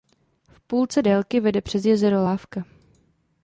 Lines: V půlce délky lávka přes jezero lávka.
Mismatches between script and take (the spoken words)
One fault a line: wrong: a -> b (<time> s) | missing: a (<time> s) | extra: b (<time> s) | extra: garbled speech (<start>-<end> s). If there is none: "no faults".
wrong: lávka -> vede (1.4 s)